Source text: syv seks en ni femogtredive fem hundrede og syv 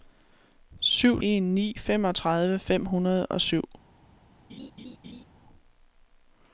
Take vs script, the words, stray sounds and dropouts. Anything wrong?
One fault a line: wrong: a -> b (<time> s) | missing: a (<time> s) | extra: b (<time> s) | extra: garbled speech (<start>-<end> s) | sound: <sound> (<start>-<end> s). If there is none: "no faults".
missing: seks (1.2 s)
sound: laugh (4.5-5.2 s)